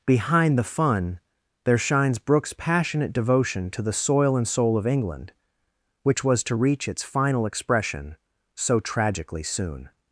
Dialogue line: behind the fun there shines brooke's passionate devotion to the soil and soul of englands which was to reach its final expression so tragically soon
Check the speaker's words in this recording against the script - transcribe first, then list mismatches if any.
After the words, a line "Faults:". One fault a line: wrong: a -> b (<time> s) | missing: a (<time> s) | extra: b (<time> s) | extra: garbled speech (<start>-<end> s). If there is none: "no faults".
behind the fun there shines brooke's passionate devotion to the soil and soul of england which was to reach its final expression so tragically soon
Faults:
wrong: englands -> england (4.9 s)